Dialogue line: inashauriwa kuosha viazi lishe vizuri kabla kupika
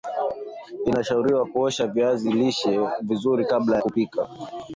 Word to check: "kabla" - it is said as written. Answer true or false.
true